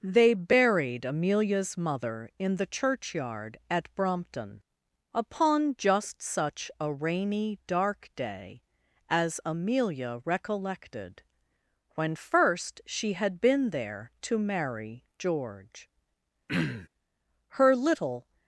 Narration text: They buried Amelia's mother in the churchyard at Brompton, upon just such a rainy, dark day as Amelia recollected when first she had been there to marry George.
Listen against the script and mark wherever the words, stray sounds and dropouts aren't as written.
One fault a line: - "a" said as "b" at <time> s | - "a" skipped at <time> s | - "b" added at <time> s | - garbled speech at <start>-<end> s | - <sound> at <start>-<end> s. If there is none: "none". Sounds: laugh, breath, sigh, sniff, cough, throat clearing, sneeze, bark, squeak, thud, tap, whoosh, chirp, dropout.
- throat clearing at 16.5-16.9 s
- "Her little" added at 17.5 s